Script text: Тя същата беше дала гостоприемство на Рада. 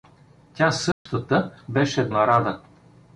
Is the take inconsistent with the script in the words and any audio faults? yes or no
yes